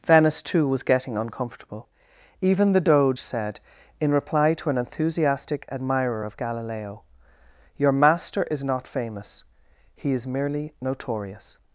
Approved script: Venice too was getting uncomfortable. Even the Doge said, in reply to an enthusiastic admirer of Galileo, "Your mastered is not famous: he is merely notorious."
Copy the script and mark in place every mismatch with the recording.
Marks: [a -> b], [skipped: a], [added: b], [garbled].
Venice too was getting uncomfortable. Even the Doge said, in reply to an enthusiastic admirer of Galileo, "Your [mastered -> master] is not famous: he is merely notorious."